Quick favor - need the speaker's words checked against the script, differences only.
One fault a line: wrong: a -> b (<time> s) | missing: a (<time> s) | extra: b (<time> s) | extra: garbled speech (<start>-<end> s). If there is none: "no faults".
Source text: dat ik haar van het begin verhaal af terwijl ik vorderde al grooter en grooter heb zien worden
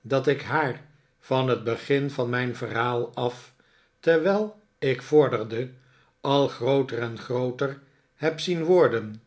extra: van mijn (2.1 s)